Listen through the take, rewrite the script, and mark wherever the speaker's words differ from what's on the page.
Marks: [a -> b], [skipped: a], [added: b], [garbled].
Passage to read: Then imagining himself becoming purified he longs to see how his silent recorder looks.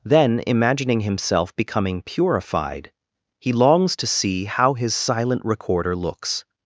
Then imagining himself becoming purified he longs to see how his silent recorder looks.